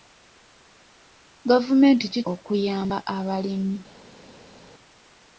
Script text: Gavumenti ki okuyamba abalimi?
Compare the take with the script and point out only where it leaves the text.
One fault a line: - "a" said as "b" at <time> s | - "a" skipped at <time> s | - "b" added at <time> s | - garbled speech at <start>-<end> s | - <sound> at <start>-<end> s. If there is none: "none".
none